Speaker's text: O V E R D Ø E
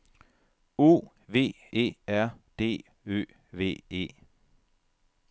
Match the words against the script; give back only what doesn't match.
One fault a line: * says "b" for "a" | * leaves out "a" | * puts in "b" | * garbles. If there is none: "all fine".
* puts in "V"